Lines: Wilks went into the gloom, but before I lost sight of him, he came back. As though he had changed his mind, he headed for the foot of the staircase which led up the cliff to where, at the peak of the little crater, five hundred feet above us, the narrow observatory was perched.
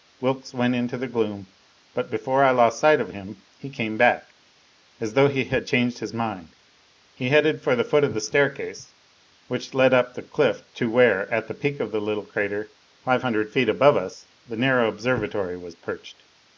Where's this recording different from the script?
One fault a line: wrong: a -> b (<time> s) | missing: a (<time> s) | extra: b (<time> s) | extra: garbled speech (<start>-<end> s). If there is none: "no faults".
no faults